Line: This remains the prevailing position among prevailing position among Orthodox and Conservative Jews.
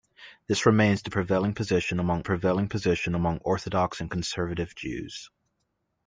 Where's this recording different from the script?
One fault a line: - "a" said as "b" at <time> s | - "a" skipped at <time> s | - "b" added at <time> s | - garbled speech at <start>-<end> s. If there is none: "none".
none